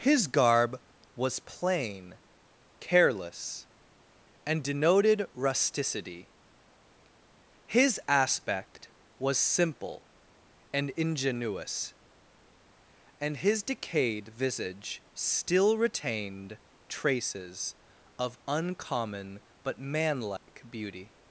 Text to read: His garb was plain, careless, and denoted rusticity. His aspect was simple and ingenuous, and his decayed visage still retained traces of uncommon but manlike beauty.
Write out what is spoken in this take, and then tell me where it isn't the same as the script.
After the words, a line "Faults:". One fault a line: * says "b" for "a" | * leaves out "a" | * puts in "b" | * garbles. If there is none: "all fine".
His garb was plain, careless, and denoted rusticity. His aspect was simple and ingenuous, and his decayed visage still retained traces of uncommon but manlike beauty.
Faults:
all fine